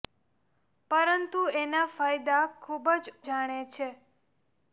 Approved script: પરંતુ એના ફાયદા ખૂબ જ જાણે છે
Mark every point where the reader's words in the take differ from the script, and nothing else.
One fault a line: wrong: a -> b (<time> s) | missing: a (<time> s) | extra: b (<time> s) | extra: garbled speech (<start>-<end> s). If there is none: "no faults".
no faults